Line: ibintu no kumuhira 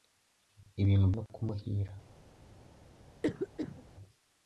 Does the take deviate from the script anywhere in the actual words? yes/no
no